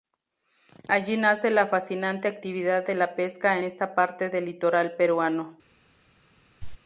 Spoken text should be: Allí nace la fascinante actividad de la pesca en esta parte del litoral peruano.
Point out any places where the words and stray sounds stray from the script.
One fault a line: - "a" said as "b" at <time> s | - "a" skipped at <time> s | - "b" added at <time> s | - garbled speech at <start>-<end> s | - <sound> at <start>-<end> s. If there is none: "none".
- "en" skipped at 3.6 s
- cough at 6.6-6.8 s